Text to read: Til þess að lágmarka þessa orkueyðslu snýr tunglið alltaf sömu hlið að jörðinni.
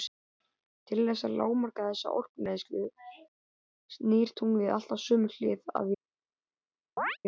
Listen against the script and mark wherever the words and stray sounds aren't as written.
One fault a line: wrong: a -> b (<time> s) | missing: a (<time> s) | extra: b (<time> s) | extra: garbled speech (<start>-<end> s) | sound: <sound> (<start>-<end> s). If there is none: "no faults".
sound: chirp (7.0-7.2 s)